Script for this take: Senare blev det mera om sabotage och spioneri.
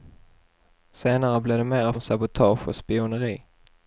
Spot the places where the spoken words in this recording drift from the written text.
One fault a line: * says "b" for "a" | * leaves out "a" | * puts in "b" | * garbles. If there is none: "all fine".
all fine